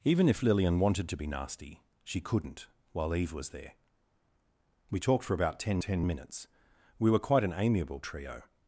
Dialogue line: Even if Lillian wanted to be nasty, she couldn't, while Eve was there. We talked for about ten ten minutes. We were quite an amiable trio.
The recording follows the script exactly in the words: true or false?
true